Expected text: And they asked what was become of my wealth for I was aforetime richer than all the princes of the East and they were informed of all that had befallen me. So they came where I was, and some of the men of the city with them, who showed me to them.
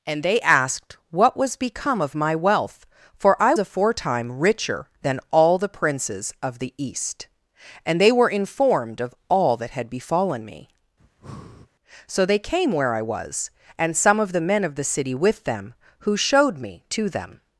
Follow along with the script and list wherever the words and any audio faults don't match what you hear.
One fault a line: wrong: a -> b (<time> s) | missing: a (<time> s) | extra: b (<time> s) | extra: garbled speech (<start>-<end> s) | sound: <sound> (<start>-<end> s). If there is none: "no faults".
missing: was (3.5 s)
sound: breath (11.0-11.7 s)